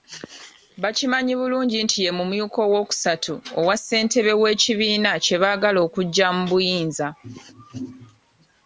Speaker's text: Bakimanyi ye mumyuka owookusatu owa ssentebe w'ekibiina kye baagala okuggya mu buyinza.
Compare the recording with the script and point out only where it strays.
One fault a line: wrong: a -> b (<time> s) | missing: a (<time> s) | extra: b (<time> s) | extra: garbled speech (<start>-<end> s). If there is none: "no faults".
extra: bulungi nti (1.4 s)